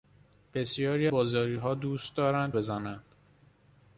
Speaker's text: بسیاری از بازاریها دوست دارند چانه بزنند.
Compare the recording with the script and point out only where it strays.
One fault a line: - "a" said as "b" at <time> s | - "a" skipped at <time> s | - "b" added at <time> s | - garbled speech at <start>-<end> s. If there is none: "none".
- "از" skipped at 1.1 s
- "چانه" skipped at 2.5 s